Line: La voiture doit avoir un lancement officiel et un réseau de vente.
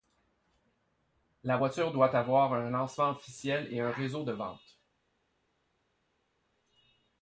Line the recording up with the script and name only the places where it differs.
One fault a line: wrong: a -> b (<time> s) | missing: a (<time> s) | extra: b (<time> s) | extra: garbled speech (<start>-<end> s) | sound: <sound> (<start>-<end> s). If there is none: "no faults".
no faults